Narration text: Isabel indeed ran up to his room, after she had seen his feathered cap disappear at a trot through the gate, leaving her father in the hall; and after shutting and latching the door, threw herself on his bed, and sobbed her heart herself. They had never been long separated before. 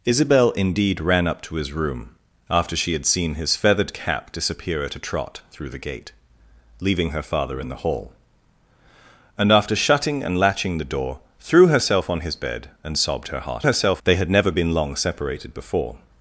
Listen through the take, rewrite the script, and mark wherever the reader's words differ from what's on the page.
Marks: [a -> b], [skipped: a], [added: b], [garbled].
Isabel indeed ran up to his room, after she had seen his feathered cap disappear at a trot through the gate, leaving her father in the hall; and after shutting and latching the door, threw herself on his bed, and sobbed her heart herself. They had never been long separated before.